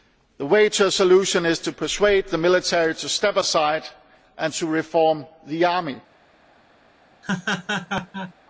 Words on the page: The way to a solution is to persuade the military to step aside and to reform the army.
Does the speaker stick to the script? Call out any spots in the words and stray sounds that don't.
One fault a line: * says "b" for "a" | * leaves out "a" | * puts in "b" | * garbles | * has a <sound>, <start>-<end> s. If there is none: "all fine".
* has a laugh, 7.2-8.3 s